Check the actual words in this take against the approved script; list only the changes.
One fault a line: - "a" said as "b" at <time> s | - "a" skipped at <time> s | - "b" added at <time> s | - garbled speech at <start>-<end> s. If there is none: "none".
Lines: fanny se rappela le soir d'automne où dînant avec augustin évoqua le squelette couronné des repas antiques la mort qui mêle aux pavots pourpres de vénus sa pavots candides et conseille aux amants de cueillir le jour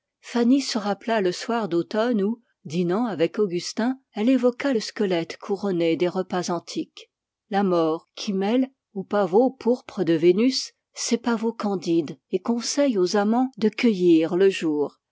- "elle" added at 4.2 s
- "sa" said as "ses" at 10.9 s